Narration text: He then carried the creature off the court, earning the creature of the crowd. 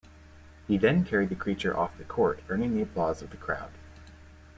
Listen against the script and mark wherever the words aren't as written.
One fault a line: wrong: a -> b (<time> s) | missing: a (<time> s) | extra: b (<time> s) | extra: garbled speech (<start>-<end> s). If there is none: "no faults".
wrong: creature -> applause (2.8 s)